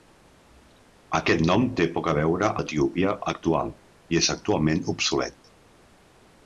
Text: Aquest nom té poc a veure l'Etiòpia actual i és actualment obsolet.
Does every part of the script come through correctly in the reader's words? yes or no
yes